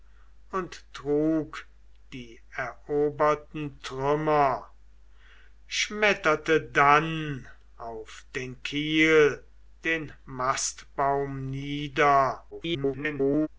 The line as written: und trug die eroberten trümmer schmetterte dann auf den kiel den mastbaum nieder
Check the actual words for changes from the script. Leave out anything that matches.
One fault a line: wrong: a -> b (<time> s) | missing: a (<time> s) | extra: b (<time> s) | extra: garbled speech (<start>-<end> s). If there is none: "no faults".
extra: garbled speech (12.5-13.5 s)